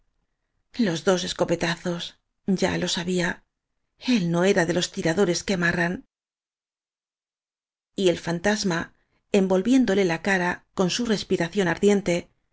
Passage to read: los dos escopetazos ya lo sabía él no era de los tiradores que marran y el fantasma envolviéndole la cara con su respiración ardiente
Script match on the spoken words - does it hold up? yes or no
yes